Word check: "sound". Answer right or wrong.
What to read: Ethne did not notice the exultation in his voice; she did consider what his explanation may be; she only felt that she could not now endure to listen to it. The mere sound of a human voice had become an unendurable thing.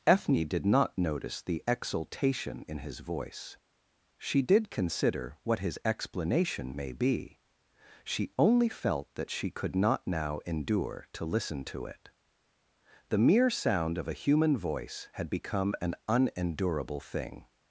right